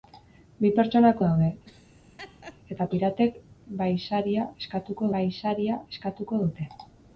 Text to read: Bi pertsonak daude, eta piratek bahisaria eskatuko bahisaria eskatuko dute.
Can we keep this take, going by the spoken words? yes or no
yes